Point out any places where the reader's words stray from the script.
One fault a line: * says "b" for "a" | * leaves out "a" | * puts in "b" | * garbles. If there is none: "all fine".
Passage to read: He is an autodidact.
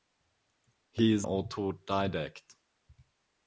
* leaves out "an"